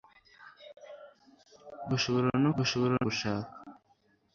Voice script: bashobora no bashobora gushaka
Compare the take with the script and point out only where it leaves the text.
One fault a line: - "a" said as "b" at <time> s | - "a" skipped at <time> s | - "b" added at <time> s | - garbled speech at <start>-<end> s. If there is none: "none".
none